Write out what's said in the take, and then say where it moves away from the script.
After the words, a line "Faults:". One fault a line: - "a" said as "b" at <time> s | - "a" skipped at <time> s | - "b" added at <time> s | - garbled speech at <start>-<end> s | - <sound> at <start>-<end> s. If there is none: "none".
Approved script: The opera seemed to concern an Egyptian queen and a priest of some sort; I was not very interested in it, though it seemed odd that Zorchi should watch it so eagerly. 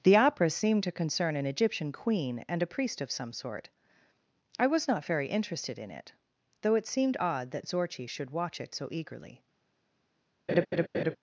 The opera seemed to concern an Egyptian queen and a priest of some sort; I was not very interested in it, though it seemed odd that Zorchi should watch it so eagerly.
Faults:
- laugh at 10.5-11.2 s